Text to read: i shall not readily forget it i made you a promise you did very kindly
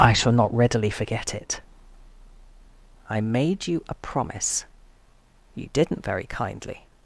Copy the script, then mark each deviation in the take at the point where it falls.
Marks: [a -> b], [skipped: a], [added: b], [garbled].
i shall not readily forget it i made you a promise you [did -> didn't] very kindly